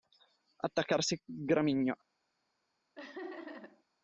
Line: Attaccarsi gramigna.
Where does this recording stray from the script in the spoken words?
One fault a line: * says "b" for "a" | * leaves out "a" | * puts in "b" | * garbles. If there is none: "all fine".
all fine